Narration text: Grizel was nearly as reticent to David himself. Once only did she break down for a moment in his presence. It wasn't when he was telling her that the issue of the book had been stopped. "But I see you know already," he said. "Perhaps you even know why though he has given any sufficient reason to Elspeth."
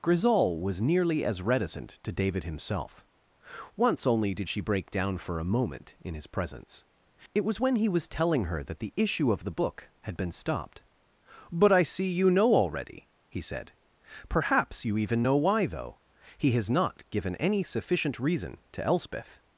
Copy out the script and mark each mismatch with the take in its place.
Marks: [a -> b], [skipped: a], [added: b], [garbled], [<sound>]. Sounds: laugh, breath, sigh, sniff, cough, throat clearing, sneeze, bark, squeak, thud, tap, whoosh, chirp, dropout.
Grizel was nearly as reticent to David himself. Once only did she break down for a moment in his presence. It [wasn't -> was] when he was telling her that the issue of the book had been stopped. "But I see you know already," he said. "Perhaps you even know why though he has [added: not] given any sufficient reason to Elspeth."